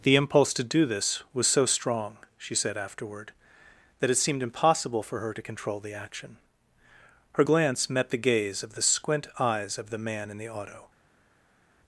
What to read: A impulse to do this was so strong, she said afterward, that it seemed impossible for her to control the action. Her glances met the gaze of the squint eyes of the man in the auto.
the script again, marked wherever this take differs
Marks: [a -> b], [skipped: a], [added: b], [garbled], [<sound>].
[A -> The] impulse to do this was so strong, she said afterward, that it seemed impossible for her to control the action. Her [glances -> glance] met the gaze of the squint eyes of the man in the auto.